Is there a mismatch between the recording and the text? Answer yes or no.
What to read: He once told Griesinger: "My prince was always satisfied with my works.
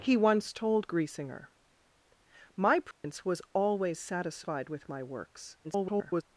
yes